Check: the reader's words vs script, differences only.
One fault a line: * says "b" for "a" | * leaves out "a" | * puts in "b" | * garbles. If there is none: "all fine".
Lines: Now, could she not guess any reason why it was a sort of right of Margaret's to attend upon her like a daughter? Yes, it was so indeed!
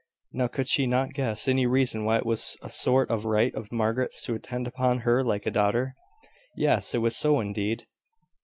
all fine